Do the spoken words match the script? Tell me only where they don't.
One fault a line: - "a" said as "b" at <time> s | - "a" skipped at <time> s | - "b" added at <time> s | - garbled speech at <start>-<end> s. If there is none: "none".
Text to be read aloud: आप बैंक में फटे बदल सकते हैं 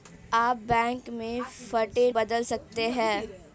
none